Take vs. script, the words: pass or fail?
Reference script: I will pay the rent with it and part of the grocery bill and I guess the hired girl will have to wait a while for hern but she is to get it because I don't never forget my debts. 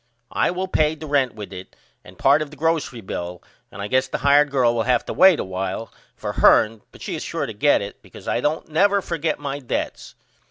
fail